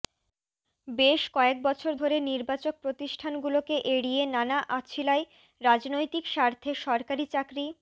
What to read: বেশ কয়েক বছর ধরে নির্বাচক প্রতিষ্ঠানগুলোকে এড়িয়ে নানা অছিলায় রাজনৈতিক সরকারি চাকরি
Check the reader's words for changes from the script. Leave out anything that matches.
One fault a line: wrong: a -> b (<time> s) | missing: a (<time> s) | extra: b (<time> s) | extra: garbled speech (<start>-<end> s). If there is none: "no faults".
extra: স্বার্থে (6.3 s)